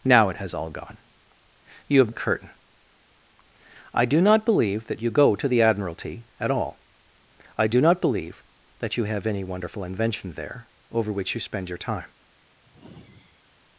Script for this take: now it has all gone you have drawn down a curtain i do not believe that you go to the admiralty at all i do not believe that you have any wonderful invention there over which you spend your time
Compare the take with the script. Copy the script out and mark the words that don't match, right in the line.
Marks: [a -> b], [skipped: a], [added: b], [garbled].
now it has all gone you have [skipped: drawn down] a curtain i do not believe that you go to the admiralty at all i do not believe that you have any wonderful invention there over which you spend your time